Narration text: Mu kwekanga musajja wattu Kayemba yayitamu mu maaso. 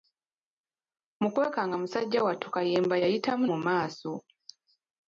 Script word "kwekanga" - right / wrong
right